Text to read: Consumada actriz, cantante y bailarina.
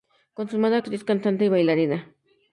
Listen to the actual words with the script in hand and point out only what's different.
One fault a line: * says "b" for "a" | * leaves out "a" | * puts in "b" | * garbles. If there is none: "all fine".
all fine